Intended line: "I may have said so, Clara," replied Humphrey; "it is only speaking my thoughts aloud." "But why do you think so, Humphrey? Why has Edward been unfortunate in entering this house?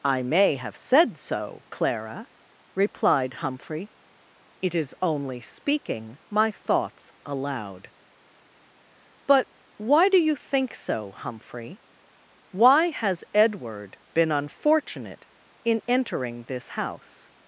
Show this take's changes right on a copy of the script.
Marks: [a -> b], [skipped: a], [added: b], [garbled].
"I may have said so, Clara," replied Humphrey; "it is only speaking my thoughts aloud." "But why do you think so, Humphrey? Why has Edward been unfortunate in entering this house?